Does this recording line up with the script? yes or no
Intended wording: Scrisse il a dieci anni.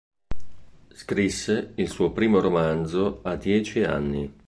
no